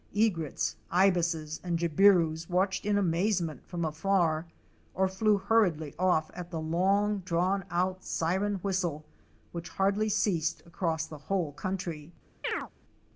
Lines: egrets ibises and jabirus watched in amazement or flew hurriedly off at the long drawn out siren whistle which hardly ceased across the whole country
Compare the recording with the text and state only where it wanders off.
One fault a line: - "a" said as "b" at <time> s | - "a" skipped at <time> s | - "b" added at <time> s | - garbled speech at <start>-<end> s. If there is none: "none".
- "from afar" added at 3.7 s